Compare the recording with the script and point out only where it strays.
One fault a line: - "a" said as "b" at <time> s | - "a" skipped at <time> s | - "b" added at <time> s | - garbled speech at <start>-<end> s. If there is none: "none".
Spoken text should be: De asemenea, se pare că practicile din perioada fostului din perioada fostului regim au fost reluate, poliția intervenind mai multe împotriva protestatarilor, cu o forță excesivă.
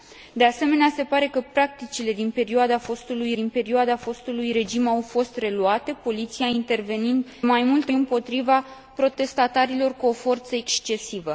none